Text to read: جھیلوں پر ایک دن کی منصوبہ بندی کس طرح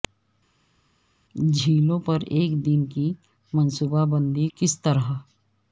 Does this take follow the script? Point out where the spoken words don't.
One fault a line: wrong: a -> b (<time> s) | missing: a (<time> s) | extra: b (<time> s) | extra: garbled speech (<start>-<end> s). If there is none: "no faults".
no faults